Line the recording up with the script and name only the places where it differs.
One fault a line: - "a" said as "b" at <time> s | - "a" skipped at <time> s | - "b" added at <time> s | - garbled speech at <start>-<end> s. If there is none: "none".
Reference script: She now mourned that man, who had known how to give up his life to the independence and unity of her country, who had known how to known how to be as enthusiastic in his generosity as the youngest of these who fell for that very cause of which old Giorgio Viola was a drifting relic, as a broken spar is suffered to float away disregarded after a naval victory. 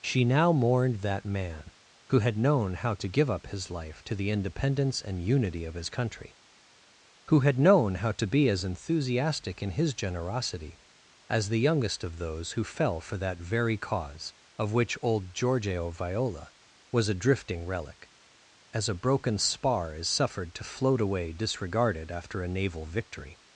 - "her" said as "his" at 5.8 s
- "known how to" skipped at 8.3 s
- "these" said as "those" at 12.2 s